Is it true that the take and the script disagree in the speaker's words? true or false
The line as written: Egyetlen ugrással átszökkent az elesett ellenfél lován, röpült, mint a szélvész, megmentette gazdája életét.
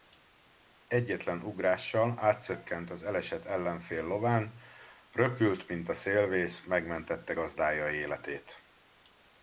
false